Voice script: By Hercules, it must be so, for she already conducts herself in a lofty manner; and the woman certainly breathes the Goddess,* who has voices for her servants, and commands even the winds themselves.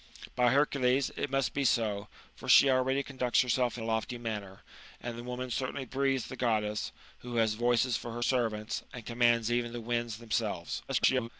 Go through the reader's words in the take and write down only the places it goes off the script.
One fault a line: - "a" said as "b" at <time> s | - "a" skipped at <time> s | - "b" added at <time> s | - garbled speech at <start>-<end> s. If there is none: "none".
- "a" skipped at 3.8 s
- garbled speech at 10.9-11.3 s